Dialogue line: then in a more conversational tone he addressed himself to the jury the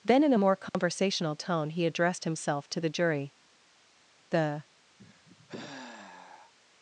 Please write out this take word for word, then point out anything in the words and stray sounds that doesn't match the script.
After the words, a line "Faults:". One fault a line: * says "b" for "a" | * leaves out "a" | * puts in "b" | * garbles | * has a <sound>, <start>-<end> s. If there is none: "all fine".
then in a more conversational tone he addressed himself to the jury the
Faults:
* has a dropout, 0.7-0.7 s
* has a sigh, 5.0-6.5 s